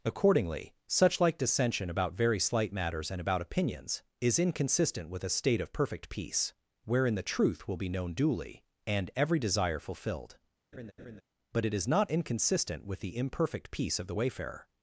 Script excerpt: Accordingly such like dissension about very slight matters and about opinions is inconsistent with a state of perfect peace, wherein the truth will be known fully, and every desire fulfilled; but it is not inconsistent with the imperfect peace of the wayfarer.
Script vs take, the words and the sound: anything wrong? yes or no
yes